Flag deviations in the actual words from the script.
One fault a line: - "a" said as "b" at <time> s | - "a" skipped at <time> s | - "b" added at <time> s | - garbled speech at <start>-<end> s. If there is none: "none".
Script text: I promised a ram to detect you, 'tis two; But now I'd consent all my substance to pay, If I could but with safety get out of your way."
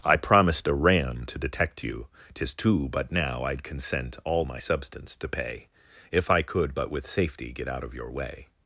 none